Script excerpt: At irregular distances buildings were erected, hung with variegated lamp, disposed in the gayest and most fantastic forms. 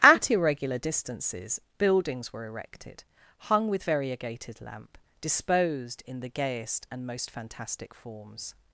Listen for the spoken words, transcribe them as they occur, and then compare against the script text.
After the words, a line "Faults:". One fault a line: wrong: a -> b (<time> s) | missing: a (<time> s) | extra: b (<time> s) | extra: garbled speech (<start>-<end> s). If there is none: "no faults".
At irregular distances buildings were erected, hung with variegated lamp, disposed in the gayest and most fantastic forms.
Faults:
no faults